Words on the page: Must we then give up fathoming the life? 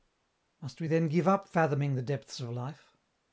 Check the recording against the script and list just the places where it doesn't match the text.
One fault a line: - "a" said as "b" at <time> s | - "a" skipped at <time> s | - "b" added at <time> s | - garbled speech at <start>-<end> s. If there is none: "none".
- "depths of" added at 2.0 s